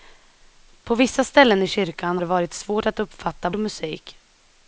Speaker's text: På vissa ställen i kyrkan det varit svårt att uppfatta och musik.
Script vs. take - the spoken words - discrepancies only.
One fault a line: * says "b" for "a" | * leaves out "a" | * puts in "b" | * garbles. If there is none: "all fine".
all fine